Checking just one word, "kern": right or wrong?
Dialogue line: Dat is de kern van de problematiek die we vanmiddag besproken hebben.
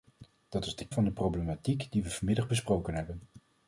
wrong